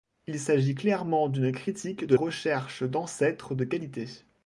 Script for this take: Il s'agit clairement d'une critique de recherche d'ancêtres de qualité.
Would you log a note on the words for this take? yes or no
no